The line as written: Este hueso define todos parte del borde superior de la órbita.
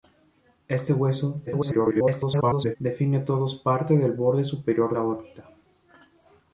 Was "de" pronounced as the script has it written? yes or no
no